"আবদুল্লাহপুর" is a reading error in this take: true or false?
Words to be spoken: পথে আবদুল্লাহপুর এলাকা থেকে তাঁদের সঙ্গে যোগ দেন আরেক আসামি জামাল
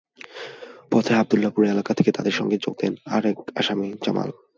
false